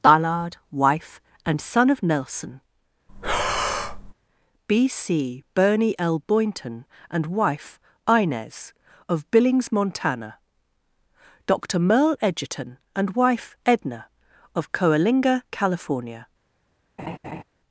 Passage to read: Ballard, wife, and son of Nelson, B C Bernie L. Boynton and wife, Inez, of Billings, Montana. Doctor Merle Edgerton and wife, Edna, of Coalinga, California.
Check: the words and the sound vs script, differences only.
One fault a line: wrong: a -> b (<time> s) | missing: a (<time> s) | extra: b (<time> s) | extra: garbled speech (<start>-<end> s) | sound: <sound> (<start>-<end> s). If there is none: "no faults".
sound: breath (3.1-4.1 s)
sound: laugh (17.0-17.4 s)